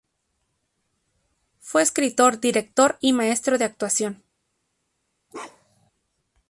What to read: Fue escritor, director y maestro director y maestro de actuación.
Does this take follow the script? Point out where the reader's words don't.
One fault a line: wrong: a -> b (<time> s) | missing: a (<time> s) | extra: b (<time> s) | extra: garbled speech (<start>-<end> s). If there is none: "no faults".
missing: director y maestro (3.6 s)